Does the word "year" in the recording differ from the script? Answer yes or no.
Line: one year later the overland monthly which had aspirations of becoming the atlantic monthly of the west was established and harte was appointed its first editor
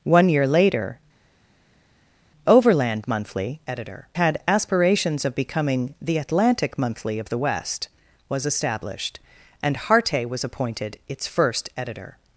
no